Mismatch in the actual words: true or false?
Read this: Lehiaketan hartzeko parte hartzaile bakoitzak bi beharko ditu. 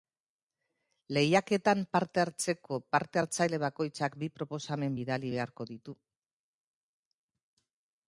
true